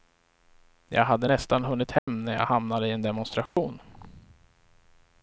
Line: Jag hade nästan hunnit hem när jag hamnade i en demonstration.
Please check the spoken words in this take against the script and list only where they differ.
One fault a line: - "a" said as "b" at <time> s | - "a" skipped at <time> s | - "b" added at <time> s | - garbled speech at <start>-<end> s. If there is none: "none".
none